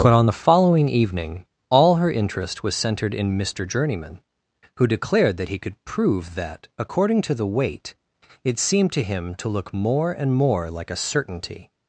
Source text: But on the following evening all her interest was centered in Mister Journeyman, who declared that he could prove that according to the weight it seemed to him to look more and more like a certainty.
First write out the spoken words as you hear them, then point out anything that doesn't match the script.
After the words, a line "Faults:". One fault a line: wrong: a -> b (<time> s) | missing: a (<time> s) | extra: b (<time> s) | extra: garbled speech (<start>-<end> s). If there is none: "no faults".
But on the following evening all her interest was centered in Mister Journeyman, who declared that he could prove that according to the weight it seemed to him to look more and more like a certainty.
Faults:
no faults